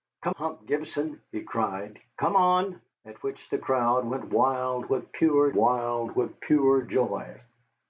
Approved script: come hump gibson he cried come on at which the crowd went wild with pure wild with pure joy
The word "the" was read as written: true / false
true